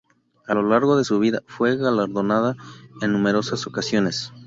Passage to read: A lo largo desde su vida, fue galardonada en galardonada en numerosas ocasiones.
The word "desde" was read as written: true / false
false